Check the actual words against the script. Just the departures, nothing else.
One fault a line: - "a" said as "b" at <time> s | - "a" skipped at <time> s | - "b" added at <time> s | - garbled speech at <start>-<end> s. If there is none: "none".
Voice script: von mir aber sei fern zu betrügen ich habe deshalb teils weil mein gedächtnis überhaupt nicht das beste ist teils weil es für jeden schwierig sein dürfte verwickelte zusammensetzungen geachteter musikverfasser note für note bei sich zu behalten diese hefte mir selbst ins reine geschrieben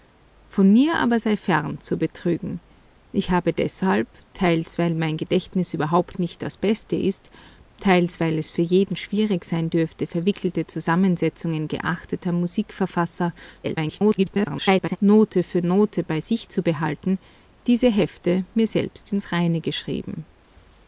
- garbled speech at 13.6-15.0 s